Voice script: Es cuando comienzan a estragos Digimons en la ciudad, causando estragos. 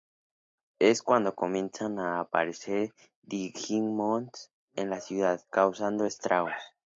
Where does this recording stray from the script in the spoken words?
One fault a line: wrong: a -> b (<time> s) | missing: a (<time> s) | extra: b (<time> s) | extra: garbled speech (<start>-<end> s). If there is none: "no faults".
wrong: estragos -> aparecer (2.2 s)